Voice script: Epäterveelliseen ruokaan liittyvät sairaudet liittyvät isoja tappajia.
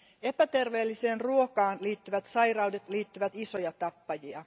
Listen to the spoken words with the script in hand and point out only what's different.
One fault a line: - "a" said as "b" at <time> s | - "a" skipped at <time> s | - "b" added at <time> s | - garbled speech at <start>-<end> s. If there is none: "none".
none